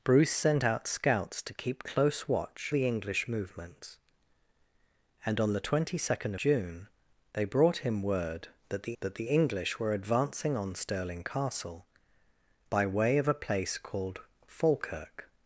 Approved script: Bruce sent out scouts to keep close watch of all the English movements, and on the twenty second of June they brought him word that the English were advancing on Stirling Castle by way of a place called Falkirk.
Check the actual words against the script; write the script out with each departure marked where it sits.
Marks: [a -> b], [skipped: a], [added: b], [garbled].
Bruce sent out scouts to keep close watch [skipped: of all] the English movements, and on the twenty second [skipped: of] June they brought him word that the [added: that the] English were advancing on Stirling Castle by way of a place called Falkirk.